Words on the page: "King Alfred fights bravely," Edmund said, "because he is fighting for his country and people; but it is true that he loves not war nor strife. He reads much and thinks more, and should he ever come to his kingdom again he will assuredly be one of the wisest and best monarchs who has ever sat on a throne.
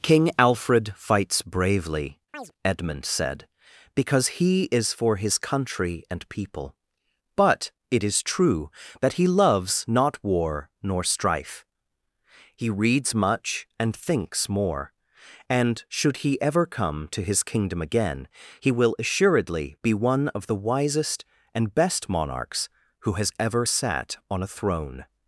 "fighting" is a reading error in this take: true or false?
true